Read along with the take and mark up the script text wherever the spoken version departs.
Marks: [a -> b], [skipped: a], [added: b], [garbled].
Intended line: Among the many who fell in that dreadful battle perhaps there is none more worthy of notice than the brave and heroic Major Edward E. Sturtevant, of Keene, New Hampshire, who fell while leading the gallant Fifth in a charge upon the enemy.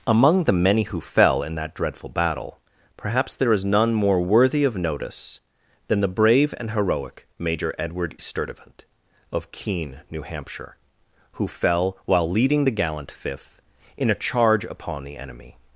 Among the many who fell in that dreadful battle perhaps there is none more worthy of notice than the brave and heroic Major Edward [skipped: E.] Sturtevant, of Keene, New Hampshire, who fell while leading the gallant Fifth in a charge upon the enemy.